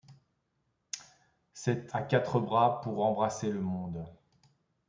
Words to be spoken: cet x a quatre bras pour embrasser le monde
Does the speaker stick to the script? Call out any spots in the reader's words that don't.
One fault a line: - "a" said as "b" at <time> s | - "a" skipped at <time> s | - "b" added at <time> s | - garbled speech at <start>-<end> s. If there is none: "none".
- "x" skipped at 1.9 s